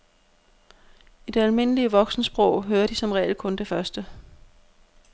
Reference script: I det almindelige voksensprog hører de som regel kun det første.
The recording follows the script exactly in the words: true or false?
true